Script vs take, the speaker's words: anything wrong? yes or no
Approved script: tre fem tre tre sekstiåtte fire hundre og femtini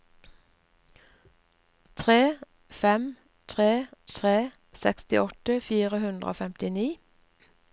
no